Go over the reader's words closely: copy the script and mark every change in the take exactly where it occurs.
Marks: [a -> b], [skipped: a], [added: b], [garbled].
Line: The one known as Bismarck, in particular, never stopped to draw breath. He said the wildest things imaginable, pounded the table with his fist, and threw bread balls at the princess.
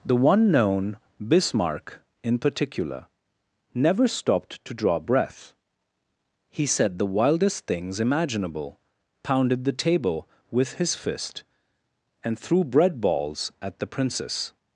The one known [skipped: as] Bismarck, in particular, never stopped to draw breath. He said the wildest things imaginable, pounded the table with his fist, and threw bread balls at the princess.